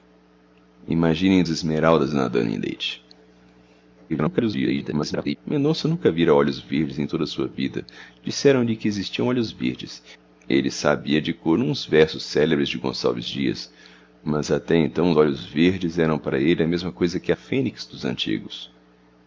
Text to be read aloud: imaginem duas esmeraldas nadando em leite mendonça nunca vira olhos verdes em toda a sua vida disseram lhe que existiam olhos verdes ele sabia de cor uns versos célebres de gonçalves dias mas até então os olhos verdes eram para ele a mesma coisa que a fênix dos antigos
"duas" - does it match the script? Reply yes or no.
no